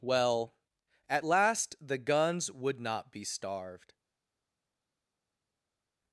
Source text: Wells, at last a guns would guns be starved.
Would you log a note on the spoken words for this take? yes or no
yes